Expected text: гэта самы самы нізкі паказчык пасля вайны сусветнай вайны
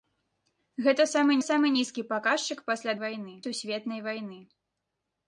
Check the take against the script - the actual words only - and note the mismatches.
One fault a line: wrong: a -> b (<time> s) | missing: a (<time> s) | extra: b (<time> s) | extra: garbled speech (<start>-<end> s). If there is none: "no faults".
no faults